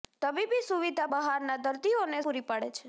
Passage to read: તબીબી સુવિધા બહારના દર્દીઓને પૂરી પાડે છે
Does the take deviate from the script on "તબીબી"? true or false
false